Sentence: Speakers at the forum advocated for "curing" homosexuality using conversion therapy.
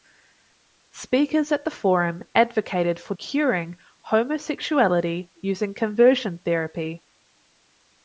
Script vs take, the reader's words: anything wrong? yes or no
no